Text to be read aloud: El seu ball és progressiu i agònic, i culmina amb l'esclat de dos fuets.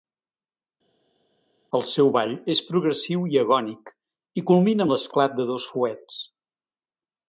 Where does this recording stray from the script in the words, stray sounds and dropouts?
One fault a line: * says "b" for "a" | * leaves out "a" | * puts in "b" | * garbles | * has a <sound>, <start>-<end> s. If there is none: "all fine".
all fine